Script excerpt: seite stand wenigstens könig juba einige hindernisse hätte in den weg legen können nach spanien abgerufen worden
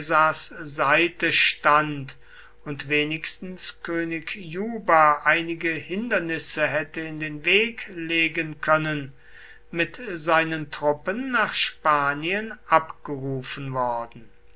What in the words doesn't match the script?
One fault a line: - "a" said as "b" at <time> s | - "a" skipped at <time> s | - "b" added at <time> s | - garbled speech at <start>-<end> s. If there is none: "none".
- "und" added at 2.6 s
- "mit seinen truppen" added at 9.7 s